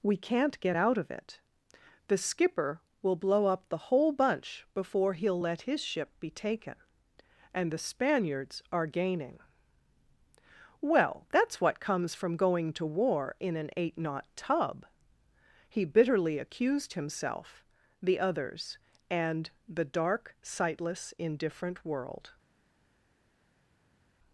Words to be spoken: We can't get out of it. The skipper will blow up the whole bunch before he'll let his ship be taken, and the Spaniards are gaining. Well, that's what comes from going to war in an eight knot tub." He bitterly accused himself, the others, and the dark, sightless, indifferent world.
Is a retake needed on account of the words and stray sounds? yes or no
no